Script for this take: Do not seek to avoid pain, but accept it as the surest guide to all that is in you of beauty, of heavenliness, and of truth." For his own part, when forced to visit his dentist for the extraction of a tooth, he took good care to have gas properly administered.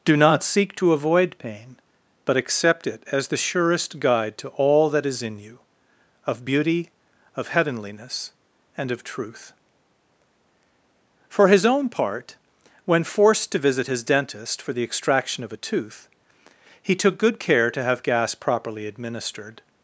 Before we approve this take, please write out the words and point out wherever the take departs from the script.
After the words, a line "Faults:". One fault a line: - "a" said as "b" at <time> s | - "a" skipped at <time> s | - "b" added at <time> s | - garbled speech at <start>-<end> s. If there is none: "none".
Do not seek to avoid pain, but accept it as the surest guide to all that is in you of beauty, of heavenliness, and of truth." For his own part, when forced to visit his dentist for the extraction of a tooth, he took good care to have gas properly administered.
Faults:
none